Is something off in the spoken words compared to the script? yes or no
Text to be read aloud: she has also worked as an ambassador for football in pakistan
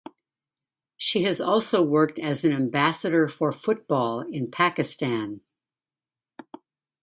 no